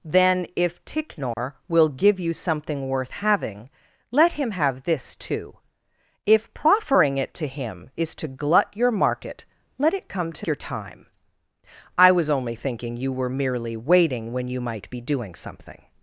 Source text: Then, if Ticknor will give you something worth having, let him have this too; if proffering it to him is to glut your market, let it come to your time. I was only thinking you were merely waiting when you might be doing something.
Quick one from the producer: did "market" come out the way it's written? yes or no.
yes